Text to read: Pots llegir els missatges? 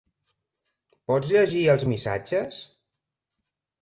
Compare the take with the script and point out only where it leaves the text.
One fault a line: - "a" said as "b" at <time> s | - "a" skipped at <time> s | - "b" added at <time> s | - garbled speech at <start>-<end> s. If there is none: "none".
none